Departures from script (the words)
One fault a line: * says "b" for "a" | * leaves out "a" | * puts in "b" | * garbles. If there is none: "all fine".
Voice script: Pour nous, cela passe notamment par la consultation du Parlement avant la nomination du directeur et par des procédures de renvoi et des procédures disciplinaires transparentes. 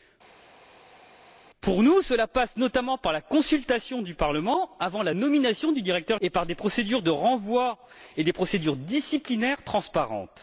all fine